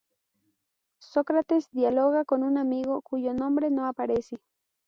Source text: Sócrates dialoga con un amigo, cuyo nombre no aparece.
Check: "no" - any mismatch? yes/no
no